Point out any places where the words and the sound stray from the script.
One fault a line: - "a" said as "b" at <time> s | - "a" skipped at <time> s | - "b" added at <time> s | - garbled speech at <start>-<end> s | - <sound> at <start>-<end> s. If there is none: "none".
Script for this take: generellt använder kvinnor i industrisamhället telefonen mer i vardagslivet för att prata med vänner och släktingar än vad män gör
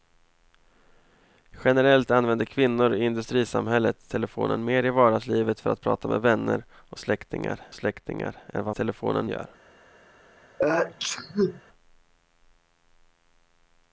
- "släktingar" added at 7.7 s
- "män" said as "telefonen" at 8.7 s
- sneeze at 10.6-11.6 s